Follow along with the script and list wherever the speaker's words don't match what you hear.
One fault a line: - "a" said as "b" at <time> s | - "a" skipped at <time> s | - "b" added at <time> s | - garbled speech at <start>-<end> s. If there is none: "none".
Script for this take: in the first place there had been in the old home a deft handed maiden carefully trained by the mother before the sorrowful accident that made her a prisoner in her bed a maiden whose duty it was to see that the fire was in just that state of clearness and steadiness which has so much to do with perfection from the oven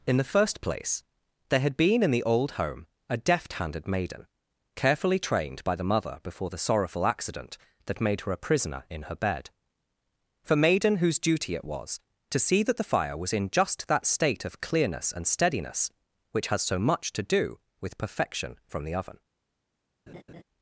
- "a" said as "for" at 10.4 s